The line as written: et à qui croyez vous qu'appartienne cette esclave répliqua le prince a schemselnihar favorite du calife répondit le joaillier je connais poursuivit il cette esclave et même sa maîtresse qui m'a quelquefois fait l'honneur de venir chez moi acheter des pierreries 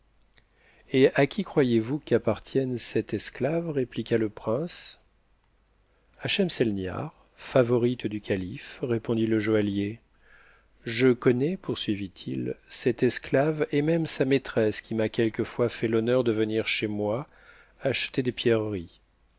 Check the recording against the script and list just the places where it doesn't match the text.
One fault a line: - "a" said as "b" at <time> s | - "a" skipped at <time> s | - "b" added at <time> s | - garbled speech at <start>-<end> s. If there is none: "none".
none